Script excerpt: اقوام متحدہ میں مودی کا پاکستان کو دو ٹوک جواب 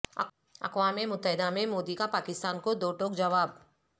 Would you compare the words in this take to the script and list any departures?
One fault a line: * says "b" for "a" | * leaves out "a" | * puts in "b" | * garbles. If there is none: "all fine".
all fine